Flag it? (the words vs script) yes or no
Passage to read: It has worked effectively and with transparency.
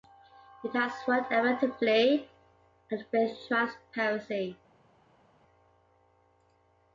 no